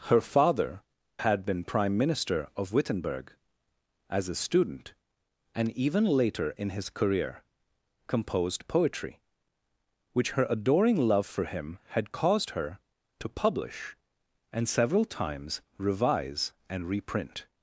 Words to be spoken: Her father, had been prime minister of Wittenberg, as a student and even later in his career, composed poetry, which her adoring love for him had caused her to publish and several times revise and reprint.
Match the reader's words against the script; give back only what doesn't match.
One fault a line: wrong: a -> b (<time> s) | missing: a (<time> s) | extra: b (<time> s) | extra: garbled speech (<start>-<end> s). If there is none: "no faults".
no faults